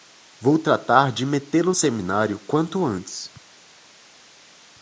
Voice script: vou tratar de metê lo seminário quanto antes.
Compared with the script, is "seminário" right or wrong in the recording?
right